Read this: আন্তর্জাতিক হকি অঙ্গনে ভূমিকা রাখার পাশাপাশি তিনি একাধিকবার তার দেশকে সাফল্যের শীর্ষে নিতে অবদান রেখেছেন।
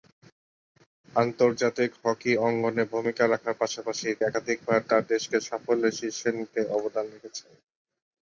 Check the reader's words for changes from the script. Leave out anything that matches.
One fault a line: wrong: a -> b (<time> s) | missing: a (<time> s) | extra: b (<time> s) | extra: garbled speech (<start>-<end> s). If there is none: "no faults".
missing: তিনি (4.1 s)